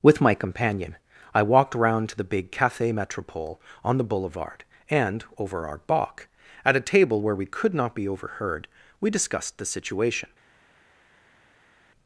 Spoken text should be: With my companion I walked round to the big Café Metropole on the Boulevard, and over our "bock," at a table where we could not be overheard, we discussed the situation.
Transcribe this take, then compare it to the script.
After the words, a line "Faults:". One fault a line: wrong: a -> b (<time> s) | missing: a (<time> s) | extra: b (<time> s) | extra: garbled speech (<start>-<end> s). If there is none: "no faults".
With my companion I walked round to the big Café Metropole on the Boulevard, and over our "bock," at a table where we could not be overheard, we discussed the situation.
Faults:
no faults